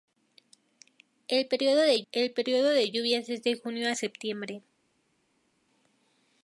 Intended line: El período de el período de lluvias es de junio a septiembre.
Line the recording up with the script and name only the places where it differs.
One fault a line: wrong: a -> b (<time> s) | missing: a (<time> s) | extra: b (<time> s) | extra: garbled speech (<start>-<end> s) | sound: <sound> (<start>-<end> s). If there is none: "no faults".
no faults